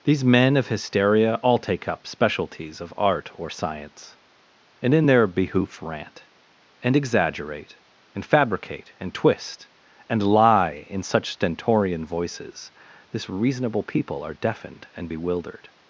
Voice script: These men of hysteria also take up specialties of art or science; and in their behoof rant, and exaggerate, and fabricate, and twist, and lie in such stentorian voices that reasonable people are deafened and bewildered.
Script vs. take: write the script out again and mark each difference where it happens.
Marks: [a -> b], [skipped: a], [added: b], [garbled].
These men of hysteria [also -> all] take up specialties of art or science; and in their behoof rant, and exaggerate, and fabricate, and twist, and lie in such stentorian voices [that -> this] reasonable people are deafened and bewildered.